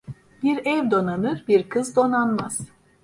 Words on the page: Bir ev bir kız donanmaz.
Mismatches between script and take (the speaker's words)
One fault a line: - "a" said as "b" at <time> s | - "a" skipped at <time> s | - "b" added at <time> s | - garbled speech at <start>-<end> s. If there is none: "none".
- "donanır" added at 0.9 s